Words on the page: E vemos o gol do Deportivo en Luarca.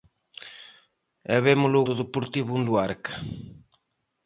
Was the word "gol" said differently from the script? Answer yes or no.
yes